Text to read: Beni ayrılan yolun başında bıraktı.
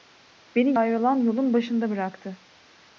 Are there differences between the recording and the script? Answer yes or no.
no